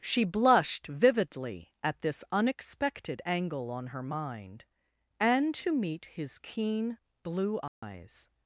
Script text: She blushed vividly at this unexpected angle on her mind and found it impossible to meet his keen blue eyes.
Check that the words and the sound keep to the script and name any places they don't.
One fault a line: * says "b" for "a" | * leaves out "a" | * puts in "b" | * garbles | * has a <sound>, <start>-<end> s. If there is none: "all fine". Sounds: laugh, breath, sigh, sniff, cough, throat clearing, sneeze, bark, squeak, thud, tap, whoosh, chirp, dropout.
* leaves out "found it impossible"
* has a dropout, 7.7-7.8 s